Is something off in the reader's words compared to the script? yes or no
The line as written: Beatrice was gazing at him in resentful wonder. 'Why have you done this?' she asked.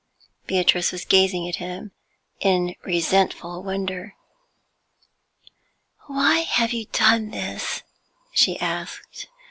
no